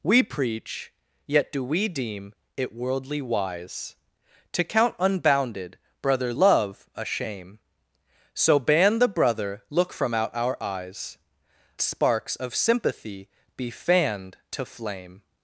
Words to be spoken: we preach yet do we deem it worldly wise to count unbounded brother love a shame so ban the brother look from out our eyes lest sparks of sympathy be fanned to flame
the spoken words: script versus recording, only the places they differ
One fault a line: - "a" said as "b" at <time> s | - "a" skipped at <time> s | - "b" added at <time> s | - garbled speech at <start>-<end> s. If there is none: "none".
- "lest" skipped at 11.2 s